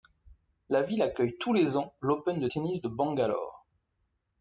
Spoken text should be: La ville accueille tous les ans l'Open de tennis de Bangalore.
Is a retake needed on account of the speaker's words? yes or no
no